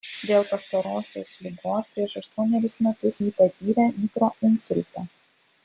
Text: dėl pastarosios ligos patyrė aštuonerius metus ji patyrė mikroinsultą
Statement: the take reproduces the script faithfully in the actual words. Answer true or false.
false